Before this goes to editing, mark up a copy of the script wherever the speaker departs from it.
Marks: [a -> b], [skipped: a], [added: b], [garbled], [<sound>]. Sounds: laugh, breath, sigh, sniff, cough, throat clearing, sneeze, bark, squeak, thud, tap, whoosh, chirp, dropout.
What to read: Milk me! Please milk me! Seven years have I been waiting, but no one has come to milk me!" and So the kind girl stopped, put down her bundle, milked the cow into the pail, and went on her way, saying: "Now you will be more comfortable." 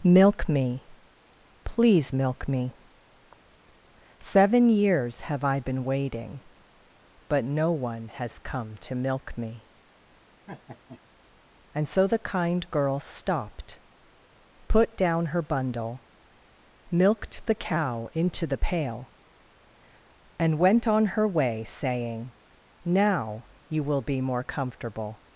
Milk me! Please milk me! Seven years have I been waiting, but no one has come to milk me!" [laugh] and So the kind girl stopped, put down her bundle, milked the cow into the pail, and went on her way, saying: "Now you will be more comfortable."